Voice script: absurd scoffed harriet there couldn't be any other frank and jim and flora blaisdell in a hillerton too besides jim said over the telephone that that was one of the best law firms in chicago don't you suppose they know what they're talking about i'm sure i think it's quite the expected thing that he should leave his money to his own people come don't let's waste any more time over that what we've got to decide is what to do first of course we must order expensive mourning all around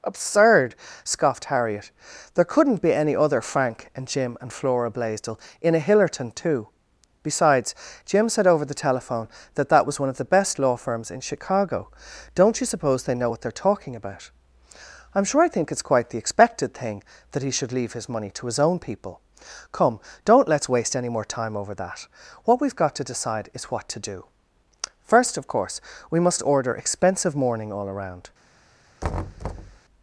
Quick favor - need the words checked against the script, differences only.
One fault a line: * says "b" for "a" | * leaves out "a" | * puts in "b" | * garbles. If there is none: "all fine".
all fine